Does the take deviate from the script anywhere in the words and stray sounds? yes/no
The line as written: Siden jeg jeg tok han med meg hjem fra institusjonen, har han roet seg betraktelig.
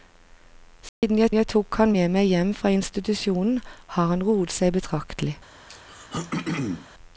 yes